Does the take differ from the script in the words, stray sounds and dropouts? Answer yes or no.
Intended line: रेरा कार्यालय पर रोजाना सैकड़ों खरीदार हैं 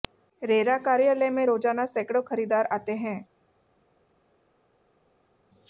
yes